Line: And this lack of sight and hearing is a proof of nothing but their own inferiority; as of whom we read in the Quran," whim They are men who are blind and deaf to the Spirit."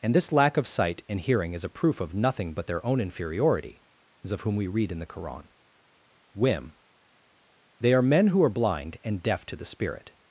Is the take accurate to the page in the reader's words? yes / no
yes